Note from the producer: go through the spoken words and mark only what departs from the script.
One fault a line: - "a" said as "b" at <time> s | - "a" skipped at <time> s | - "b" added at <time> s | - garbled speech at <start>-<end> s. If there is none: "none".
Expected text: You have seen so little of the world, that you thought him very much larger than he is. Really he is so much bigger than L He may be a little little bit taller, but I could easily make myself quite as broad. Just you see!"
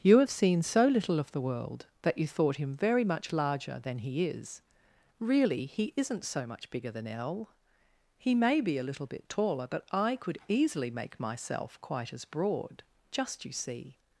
- "is" said as "isn't" at 6.0 s
- "little" skipped at 9.1 s